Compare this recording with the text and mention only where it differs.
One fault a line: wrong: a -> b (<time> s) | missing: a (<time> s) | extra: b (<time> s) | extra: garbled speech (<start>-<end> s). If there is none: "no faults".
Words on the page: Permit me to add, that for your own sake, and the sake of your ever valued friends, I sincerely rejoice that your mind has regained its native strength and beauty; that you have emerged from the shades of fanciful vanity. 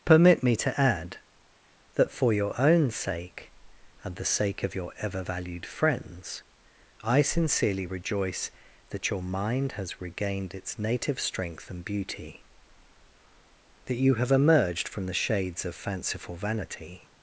no faults